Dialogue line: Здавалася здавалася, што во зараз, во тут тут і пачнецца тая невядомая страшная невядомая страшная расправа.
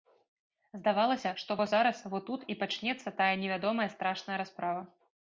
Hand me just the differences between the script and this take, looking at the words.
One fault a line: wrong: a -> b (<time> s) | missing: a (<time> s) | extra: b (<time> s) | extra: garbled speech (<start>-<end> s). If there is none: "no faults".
missing: здавалася (1.3 s)
missing: тут (2.4 s)
missing: невядомая страшная (4.4 s)